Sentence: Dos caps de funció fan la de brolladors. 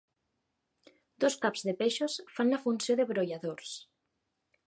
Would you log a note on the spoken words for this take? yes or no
yes